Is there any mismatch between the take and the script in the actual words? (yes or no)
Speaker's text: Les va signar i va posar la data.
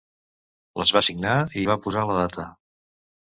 no